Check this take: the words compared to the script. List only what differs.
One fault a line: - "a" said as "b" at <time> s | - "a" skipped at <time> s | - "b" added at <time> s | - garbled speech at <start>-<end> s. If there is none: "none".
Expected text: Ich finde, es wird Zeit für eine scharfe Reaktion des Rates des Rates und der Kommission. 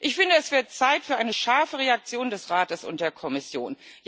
- "des Rates" skipped at 2.8 s